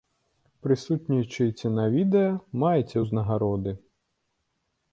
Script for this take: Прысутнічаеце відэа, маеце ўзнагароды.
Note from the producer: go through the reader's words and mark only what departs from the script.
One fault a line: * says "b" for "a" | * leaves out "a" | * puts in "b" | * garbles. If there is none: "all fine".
* puts in "на"